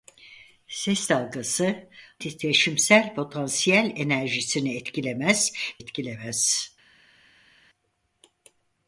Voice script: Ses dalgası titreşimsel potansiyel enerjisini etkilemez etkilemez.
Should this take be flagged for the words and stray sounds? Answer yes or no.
no